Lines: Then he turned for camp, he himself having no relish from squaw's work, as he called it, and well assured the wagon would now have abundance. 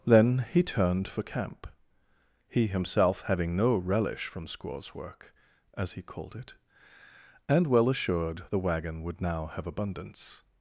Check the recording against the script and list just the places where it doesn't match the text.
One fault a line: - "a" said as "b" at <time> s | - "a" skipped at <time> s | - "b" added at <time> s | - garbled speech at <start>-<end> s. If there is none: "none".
none